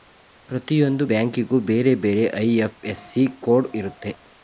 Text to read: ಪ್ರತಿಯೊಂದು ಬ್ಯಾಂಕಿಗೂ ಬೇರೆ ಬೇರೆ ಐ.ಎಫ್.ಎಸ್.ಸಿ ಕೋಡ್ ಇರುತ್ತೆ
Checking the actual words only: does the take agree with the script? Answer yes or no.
yes